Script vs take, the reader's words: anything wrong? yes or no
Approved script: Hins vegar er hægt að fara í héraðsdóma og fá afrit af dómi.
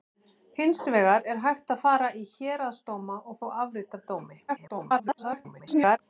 yes